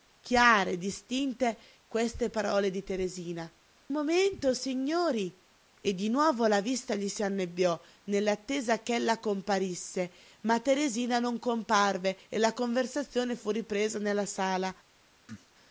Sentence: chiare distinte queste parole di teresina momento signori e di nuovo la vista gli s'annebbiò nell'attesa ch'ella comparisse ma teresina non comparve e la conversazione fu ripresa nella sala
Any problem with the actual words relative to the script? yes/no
no